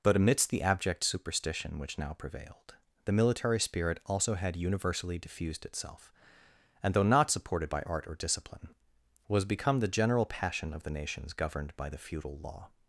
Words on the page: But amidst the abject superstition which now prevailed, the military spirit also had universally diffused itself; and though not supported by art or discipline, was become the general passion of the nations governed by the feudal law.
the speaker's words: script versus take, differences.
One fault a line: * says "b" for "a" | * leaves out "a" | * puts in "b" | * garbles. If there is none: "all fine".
all fine